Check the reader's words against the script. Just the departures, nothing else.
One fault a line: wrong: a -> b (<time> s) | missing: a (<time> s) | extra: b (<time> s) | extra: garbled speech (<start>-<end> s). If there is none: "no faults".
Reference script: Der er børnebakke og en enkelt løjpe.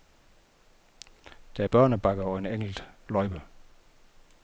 no faults